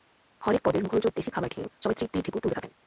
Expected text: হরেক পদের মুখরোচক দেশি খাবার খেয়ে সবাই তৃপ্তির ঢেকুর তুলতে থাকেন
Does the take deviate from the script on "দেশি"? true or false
false